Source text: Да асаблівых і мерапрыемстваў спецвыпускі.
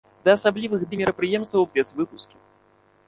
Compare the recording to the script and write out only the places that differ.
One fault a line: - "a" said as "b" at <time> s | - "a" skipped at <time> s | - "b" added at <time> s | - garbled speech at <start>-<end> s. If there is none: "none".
none